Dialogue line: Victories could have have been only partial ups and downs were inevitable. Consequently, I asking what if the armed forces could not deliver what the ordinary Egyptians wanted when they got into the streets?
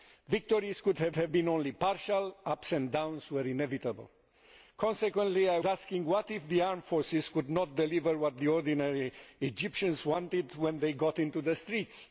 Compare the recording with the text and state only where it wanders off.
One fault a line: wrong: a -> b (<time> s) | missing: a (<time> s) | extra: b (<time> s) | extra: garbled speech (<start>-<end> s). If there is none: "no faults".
no faults